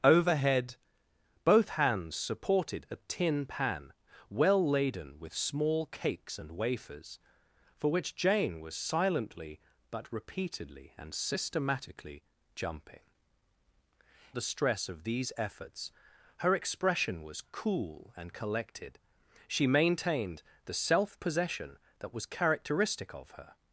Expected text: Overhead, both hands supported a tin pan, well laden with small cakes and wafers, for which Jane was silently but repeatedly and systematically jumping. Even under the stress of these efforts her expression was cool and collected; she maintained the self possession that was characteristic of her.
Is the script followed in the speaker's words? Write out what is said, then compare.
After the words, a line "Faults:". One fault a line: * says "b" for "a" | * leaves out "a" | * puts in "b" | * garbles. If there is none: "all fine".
Overhead, both hands supported a tin pan, well laden with small cakes and wafers, for which Jane was silently but repeatedly and systematically jumping. The stress of these efforts her expression was cool and collected; she maintained the self possession that was characteristic of her.
Faults:
* leaves out "Even under"